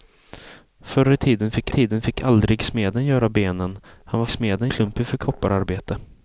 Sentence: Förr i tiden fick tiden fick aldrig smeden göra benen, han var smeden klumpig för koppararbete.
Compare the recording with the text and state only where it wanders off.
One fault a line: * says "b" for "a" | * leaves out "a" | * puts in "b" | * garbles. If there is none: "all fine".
all fine